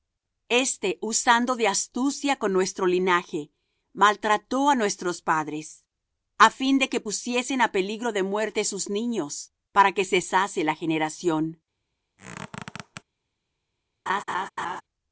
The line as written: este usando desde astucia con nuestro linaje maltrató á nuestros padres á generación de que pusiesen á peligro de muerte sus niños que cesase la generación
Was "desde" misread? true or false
true